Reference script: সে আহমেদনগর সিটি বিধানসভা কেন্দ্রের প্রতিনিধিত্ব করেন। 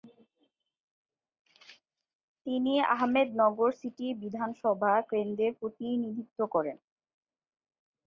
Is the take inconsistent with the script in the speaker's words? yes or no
yes